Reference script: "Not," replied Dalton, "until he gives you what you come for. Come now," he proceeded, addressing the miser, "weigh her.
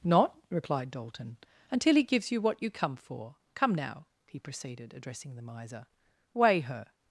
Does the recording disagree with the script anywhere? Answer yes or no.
no